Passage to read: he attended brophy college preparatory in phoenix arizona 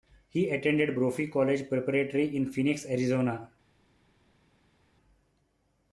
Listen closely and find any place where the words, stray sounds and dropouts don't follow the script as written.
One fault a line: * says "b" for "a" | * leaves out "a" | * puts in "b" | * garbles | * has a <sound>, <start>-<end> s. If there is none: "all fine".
all fine